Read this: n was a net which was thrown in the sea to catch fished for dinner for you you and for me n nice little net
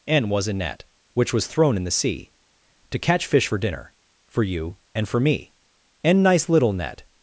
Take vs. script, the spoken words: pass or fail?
fail